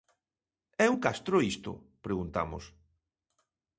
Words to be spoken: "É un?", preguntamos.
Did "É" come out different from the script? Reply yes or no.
no